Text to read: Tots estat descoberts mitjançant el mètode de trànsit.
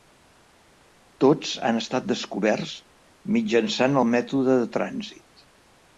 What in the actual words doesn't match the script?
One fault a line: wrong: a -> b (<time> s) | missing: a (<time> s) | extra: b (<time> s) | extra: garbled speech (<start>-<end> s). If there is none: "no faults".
extra: han (1.7 s)